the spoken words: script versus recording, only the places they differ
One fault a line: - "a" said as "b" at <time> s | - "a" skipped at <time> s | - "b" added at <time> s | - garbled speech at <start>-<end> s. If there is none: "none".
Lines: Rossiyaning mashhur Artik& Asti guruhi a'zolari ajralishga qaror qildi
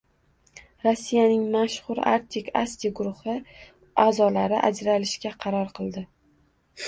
none